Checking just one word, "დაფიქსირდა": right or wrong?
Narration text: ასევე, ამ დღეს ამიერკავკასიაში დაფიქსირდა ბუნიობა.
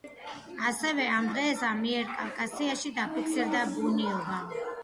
right